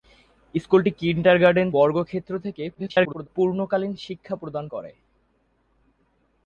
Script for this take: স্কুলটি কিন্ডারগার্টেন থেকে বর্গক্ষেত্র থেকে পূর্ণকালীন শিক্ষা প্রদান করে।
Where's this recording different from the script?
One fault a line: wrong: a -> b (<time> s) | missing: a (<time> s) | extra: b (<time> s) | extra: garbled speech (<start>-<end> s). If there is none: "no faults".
missing: থেকে (1.7 s)
extra: garbled speech (2.7-3.3 s)